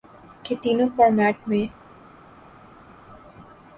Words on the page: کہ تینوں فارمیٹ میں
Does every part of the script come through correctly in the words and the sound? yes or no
yes